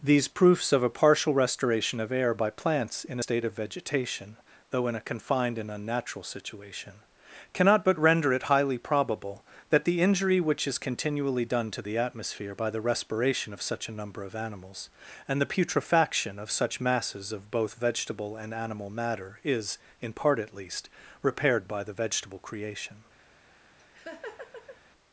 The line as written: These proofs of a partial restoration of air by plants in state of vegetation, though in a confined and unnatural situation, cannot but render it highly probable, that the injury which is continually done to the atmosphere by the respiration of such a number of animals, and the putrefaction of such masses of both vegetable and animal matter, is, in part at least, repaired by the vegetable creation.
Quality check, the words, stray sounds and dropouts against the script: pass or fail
fail